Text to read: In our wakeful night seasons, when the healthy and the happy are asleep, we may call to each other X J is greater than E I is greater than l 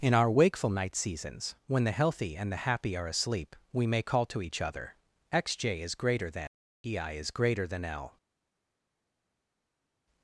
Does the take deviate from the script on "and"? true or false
false